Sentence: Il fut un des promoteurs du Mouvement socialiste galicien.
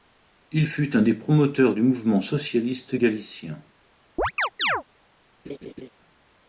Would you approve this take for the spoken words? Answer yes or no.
yes